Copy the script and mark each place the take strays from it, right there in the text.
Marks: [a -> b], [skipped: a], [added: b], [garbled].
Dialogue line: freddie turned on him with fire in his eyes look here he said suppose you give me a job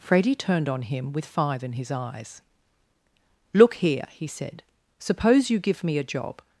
freddie turned on him with [fire -> five] in his eyes look here he said suppose you give me a job